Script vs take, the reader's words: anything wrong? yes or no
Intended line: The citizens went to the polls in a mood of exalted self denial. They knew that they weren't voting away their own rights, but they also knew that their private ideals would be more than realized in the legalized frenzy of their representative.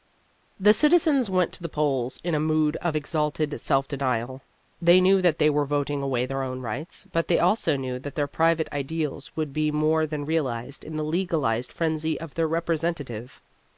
yes